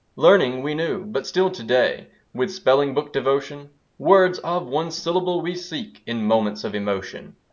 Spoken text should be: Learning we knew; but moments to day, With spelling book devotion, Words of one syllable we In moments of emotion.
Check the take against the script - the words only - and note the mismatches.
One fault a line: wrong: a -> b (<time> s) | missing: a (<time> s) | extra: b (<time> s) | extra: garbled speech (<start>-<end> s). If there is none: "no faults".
wrong: moments -> still (1.2 s)
extra: seek (5.6 s)